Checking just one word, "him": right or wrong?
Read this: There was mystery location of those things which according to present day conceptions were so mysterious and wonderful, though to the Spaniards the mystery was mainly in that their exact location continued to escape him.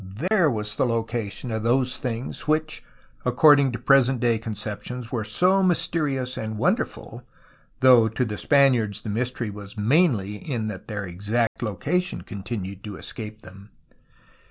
wrong